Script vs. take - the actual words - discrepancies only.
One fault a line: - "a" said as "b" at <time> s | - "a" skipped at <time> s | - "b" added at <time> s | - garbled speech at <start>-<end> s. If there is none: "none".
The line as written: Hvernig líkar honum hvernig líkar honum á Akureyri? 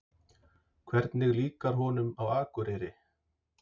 - "hvernig líkar honum" skipped at 2.1 s